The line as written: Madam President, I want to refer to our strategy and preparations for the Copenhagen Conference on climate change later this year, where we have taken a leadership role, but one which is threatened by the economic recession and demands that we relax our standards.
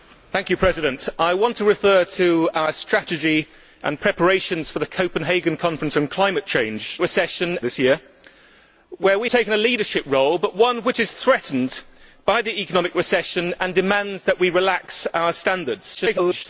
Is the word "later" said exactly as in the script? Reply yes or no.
no